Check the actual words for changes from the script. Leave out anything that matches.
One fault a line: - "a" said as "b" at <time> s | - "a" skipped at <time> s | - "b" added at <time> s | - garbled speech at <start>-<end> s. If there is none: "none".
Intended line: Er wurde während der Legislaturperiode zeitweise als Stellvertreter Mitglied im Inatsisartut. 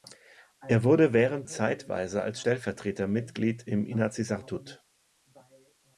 - "der Legislaturperiode" skipped at 1.5 s